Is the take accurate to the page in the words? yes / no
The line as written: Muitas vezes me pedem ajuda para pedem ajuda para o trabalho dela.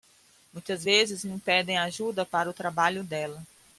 no